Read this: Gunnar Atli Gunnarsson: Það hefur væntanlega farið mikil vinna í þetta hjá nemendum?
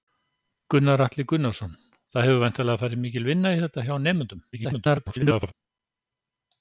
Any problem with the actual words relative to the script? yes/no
yes